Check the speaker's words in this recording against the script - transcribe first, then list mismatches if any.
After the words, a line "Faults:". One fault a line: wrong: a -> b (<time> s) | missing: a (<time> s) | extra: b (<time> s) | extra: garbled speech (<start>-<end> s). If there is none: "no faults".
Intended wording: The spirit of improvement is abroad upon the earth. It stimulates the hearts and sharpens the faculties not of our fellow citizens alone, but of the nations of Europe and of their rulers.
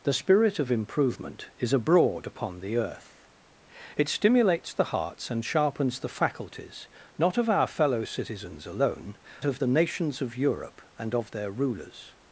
The spirit of improvement is abroad upon the earth. It stimulates the hearts and sharpens the faculties not of our fellow citizens alone, of the nations of Europe and of their rulers.
Faults:
missing: but (9.2 s)